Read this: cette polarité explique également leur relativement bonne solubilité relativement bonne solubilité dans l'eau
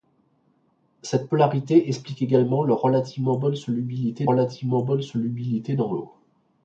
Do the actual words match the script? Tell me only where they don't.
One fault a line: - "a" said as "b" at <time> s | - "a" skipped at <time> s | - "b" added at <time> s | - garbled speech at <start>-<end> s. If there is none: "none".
none